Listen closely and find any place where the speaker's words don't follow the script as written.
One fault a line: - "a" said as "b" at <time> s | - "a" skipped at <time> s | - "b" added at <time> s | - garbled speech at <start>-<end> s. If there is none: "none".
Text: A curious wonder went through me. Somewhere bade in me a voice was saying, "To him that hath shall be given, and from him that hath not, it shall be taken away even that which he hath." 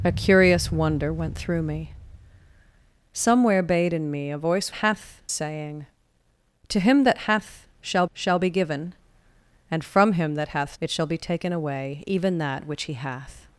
- "was" said as "hath" at 4.7 s
- "shall" added at 8.1 s
- "not" skipped at 10.8 s